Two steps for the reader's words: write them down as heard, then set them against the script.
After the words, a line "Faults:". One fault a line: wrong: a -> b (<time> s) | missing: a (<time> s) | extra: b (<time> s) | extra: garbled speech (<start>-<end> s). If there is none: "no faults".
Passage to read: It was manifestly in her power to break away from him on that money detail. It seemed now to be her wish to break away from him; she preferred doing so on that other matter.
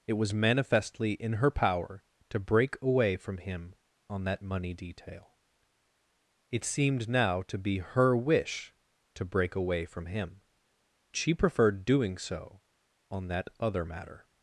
It was manifestly in her power to break away from him on that money detail. It seemed now to be her wish to break away from him; she preferred doing so on that other matter.
Faults:
no faults